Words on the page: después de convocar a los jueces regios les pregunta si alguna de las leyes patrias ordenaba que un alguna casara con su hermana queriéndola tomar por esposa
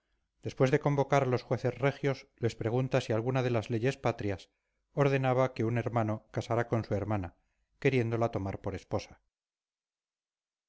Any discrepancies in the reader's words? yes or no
yes